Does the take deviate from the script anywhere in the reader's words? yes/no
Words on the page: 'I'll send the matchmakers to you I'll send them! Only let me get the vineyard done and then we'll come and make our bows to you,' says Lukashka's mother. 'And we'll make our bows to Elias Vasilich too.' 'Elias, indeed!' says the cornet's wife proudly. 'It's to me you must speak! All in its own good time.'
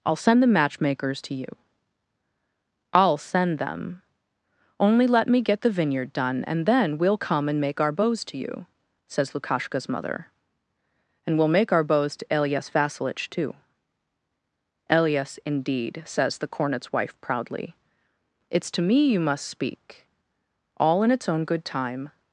no